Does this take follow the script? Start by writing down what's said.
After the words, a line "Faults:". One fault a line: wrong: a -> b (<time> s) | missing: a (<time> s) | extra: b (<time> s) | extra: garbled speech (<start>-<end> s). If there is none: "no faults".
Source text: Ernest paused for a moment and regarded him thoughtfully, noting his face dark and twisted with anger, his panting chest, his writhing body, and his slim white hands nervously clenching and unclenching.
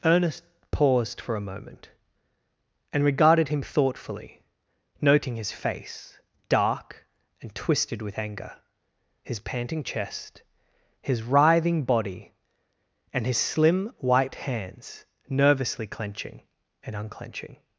Ernest paused for a moment and regarded him thoughtfully, noting his face dark and twisted with anger, his panting chest, his writhing body, and his slim white hands nervously clenching and unclenching.
Faults:
no faults